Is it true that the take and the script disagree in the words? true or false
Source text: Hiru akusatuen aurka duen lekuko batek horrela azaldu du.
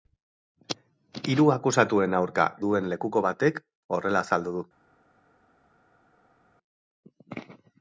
false